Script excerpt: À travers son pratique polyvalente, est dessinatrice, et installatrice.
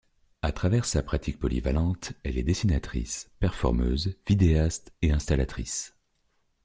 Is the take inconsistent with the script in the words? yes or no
yes